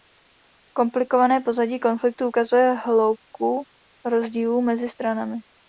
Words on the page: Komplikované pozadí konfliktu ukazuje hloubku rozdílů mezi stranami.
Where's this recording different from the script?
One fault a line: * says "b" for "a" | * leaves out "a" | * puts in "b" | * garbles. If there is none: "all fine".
all fine